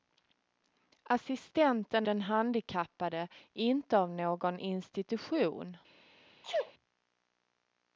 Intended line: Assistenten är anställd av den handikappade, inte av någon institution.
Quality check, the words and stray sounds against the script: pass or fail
fail